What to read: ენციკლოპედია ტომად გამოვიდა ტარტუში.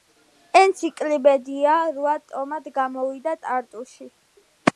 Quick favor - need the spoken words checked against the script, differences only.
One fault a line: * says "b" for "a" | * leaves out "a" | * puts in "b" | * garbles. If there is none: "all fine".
* puts in "რვა"